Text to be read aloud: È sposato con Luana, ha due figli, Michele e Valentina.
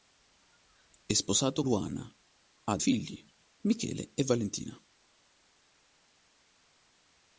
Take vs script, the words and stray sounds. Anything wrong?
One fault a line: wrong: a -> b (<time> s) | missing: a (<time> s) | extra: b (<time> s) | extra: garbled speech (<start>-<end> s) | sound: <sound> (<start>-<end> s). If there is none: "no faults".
missing: con (1.6 s)
missing: due (2.8 s)